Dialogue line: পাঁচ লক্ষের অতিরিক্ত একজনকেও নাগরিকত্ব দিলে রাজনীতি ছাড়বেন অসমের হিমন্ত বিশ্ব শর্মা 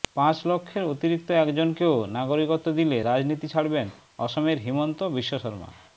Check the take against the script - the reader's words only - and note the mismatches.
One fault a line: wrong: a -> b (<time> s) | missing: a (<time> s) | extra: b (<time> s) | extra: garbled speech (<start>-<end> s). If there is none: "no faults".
no faults